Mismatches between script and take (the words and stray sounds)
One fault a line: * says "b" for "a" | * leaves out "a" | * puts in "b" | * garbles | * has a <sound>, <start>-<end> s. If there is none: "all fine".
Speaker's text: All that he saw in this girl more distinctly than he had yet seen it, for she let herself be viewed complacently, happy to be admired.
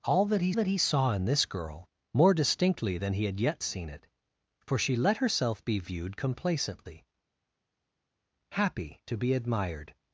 * puts in "that he"